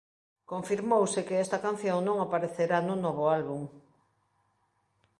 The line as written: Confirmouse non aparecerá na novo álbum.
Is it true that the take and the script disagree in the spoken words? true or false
true